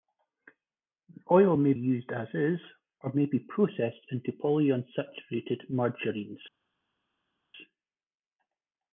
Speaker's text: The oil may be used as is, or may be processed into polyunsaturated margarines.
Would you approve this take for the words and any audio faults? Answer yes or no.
no